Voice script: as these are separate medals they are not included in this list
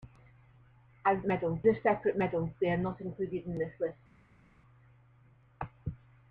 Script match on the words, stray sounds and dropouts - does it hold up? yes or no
no